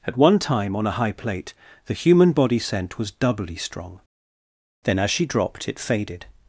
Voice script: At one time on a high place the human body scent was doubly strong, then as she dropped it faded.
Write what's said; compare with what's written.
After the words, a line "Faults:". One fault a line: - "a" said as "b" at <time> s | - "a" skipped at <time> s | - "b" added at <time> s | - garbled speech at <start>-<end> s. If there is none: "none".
At one time on a high plate the human body scent was doubly strong, then as she dropped it faded.
Faults:
- "place" said as "plate" at 1.1 s